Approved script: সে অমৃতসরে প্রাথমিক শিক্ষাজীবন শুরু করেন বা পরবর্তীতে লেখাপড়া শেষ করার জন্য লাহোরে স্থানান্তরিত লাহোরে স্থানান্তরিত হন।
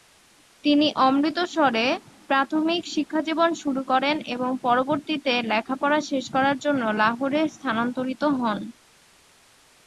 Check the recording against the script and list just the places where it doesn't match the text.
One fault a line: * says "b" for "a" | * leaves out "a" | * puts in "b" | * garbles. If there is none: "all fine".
* says "তিনি" for "সে"
* says "এবং" for "বা"
* leaves out "লাহোরে স্থানান্তরিত"